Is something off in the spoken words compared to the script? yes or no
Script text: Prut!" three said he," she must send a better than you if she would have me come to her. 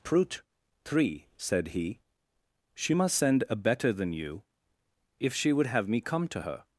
no